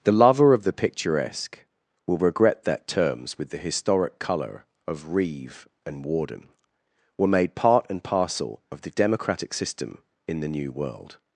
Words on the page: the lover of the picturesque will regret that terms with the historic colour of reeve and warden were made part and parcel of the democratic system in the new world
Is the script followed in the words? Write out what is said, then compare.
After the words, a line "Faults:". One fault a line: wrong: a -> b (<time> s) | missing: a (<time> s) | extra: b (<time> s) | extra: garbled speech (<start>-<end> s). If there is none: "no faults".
the lover of the picturesque will regret that terms with the historic colour of reeve and warden were made part and parcel of the democratic system in the new world
Faults:
no faults